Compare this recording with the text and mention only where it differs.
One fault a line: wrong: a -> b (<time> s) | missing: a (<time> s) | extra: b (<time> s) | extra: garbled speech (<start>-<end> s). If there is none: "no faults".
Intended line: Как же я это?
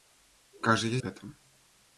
no faults